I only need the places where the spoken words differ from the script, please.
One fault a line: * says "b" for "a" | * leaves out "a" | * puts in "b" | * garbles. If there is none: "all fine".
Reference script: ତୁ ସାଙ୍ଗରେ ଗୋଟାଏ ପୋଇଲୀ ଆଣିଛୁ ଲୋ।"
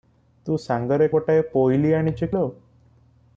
all fine